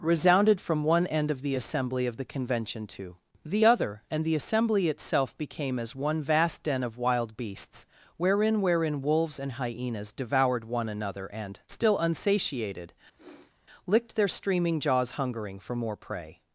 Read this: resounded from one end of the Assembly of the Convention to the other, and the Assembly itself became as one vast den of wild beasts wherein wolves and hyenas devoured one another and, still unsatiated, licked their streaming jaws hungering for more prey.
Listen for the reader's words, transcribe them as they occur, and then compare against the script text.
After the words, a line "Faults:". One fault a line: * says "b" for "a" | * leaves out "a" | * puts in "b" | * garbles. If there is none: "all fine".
resounded from one end of the Assembly of the Convention to the other, and the Assembly itself became as one vast den of wild beasts wherein wherein wolves and hyenas devoured one another and, still unsatiated, licked their streaming jaws hungering for more prey.
Faults:
* puts in "wherein"